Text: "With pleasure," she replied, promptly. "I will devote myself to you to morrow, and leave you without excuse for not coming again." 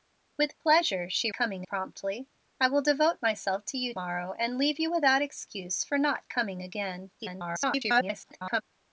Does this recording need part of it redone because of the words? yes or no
yes